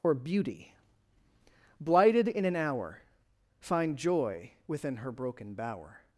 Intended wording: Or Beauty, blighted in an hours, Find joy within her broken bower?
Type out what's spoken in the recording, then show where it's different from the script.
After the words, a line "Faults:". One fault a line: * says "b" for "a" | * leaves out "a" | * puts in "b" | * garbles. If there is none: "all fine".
Or Beauty, blighted in an hour, Find joy within her broken bower?
Faults:
* says "hour" for "hours"